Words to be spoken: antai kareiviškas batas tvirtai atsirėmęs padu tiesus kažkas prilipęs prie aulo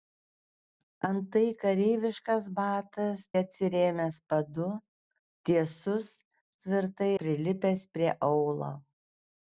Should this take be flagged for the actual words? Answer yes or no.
yes